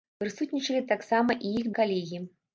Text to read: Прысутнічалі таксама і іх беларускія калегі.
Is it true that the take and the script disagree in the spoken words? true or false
true